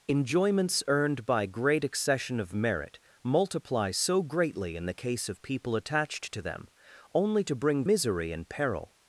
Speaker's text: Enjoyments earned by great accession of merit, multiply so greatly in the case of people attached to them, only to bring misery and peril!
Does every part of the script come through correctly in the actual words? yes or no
yes